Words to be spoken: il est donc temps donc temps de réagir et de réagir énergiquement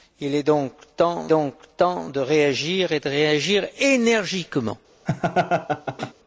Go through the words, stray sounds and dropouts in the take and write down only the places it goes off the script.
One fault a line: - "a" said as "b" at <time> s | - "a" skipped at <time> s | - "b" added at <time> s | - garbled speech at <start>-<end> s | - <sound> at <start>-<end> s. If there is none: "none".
- laugh at 5.1-6.1 s